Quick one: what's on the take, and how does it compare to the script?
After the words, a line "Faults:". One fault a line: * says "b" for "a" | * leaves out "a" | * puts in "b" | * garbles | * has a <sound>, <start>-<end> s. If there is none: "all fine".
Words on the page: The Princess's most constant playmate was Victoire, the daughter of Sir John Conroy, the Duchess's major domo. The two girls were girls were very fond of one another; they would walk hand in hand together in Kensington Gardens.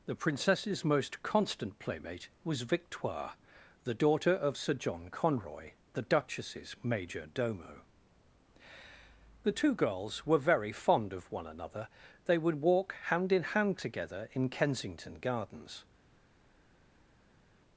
The Princess's most constant playmate was Victoire, the daughter of Sir John Conroy, the Duchess's major domo. The two girls were very fond of one another; they would walk hand in hand together in Kensington Gardens.
Faults:
* leaves out "girls were"